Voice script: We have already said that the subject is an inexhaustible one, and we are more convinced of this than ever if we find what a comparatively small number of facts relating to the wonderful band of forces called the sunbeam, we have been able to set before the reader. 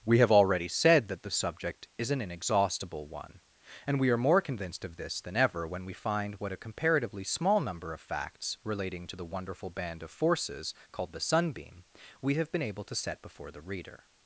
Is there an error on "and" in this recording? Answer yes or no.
no